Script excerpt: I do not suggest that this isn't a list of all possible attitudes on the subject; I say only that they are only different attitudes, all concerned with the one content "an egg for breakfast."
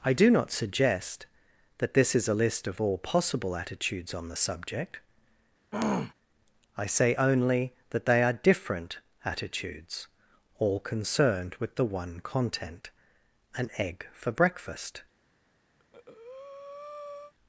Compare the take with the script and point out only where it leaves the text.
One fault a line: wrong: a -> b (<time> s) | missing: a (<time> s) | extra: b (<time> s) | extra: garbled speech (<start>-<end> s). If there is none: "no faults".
wrong: isn't -> is (2.1 s)
missing: only (8.3 s)